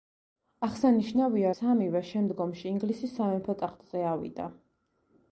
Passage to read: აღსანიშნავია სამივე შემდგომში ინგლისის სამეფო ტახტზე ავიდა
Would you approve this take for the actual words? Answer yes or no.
yes